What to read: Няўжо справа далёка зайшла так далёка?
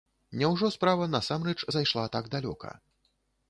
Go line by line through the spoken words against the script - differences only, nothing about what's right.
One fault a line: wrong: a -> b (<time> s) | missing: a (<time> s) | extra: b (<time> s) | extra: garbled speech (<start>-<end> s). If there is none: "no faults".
wrong: далёка -> насамрэч (1.2 s)